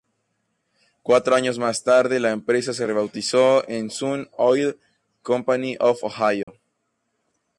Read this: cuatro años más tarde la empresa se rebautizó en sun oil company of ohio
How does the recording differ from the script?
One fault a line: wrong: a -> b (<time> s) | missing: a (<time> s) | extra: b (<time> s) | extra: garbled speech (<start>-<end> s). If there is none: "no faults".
no faults